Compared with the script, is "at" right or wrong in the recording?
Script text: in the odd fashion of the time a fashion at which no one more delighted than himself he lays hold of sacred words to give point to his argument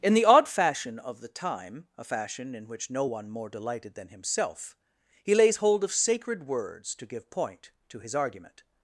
wrong